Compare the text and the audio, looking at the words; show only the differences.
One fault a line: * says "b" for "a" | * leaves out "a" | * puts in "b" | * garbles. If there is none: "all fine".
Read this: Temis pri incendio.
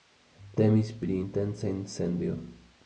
* puts in "intenca"